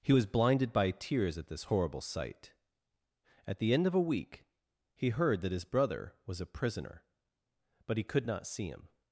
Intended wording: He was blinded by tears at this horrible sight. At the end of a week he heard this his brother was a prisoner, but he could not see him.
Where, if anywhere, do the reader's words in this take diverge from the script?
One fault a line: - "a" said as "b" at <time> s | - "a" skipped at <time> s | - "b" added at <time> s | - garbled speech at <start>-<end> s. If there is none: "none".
- "this" said as "that" at 5.4 s